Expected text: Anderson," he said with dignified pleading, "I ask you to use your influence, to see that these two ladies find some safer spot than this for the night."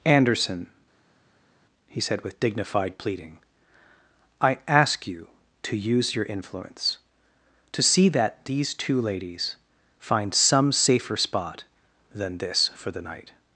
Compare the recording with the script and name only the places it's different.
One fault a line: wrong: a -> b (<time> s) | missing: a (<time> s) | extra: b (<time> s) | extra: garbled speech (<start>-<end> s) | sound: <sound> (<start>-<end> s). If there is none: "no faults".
no faults